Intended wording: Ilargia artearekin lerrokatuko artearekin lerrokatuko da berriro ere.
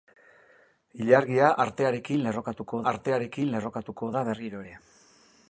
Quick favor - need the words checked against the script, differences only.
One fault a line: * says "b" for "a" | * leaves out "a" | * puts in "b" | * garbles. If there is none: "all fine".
all fine